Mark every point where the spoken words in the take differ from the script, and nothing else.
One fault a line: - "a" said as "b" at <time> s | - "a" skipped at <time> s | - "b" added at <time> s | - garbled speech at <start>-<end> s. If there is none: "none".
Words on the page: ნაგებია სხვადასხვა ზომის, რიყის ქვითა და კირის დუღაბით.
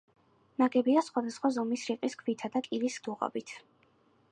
none